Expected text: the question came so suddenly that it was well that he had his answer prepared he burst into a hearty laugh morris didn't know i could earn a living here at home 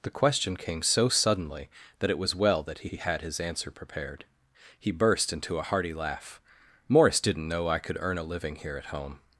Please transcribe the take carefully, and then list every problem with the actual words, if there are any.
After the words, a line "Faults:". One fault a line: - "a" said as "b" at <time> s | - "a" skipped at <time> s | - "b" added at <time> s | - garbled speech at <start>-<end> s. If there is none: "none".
the question came so suddenly that it was well that he he had his answer prepared he burst into a hearty laugh morris didn't know i could earn a living here at home
Faults:
- "he" added at 2.9 s